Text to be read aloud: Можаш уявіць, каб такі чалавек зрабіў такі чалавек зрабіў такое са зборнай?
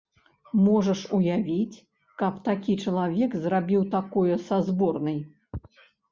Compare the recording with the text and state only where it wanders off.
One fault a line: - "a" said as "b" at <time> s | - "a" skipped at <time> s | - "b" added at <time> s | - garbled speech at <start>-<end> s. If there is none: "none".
- "такі чалавек зрабіў" skipped at 3.8 s